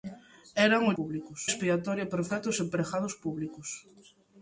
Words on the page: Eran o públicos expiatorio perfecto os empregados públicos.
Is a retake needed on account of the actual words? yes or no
no